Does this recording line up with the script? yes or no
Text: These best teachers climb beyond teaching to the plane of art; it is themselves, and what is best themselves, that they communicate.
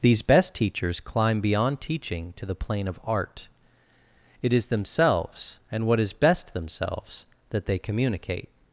yes